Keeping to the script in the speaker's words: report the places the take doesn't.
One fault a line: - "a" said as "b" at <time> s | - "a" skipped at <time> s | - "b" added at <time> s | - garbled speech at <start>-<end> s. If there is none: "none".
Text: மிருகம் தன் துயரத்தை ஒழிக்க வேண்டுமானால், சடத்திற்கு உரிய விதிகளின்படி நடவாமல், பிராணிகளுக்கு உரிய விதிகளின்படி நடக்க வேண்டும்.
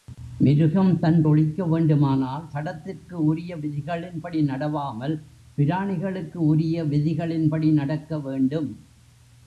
- "துயரத்தை" skipped at 1.2 s